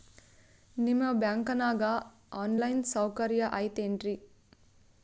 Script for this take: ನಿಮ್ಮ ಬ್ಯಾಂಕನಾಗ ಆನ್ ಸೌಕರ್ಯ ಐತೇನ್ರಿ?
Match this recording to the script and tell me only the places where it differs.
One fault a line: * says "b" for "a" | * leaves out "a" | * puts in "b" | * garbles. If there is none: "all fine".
* puts in "ಲೈನ್"